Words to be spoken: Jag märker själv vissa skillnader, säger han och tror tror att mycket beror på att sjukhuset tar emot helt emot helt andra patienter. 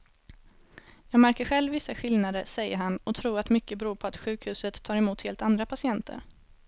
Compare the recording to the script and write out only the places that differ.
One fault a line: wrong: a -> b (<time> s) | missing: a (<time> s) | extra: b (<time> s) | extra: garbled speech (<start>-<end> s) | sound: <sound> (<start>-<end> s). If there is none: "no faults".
missing: tror (3.4 s)
missing: emot helt (5.4 s)